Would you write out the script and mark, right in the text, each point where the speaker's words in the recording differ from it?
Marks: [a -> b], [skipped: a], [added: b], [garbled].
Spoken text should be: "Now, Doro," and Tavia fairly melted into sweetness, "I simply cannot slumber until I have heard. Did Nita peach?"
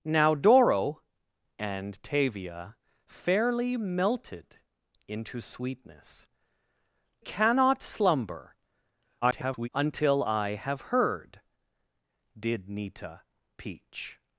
"Now, Doro," and Tavia fairly melted into sweetness, [skipped: "I simply] cannot slumber [garbled] until I have heard. Did Nita peach?"